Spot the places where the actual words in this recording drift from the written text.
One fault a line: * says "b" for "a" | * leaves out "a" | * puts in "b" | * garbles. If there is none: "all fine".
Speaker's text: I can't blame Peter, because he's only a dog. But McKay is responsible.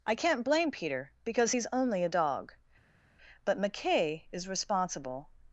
all fine